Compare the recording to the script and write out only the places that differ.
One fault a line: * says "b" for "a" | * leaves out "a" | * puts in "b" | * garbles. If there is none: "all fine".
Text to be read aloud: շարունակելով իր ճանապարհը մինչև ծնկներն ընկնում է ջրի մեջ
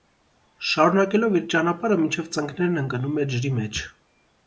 all fine